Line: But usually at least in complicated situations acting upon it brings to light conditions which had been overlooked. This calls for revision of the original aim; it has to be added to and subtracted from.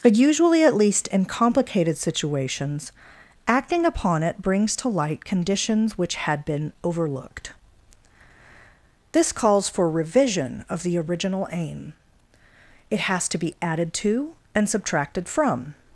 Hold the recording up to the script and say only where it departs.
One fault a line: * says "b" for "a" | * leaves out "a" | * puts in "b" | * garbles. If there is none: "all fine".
all fine